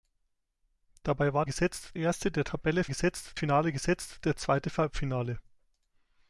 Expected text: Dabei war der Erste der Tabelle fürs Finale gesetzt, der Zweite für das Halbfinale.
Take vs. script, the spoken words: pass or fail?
fail